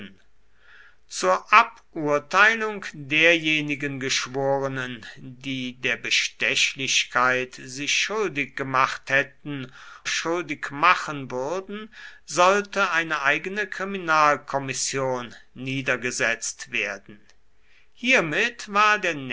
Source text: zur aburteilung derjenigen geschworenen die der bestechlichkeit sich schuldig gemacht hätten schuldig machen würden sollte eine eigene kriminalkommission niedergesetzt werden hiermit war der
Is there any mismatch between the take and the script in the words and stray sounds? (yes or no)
no